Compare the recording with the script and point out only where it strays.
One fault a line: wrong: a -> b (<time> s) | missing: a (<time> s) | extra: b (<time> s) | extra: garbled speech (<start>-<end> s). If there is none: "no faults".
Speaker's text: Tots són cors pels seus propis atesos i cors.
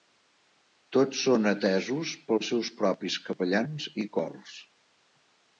wrong: cors -> atesos (1.5 s)
wrong: atesos -> capellans (3.3 s)